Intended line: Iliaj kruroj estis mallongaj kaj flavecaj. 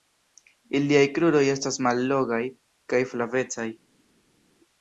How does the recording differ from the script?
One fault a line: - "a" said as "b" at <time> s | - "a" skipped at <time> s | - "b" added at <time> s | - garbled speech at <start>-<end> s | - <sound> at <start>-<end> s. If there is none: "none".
- "estis" said as "estas" at 1.6 s